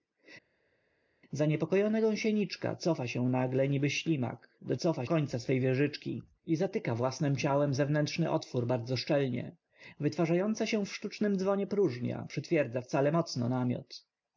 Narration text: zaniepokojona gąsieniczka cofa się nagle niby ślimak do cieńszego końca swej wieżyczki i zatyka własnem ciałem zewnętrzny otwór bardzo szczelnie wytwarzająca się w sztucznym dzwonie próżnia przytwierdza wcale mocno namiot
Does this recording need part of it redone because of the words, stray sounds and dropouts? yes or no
yes